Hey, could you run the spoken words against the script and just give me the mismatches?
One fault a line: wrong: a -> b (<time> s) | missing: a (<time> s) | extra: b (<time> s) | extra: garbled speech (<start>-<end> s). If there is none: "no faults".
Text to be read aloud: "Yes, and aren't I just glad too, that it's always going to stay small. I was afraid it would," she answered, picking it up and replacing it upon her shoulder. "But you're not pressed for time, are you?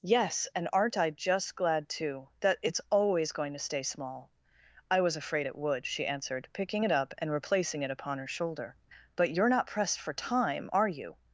no faults